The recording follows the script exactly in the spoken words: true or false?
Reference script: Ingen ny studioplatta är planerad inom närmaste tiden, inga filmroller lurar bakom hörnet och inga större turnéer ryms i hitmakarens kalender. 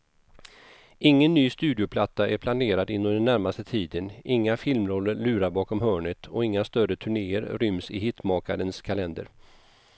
false